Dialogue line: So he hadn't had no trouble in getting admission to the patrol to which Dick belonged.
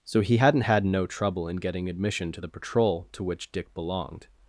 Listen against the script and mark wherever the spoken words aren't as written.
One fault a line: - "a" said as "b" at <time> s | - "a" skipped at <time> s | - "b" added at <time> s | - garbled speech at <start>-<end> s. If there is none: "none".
none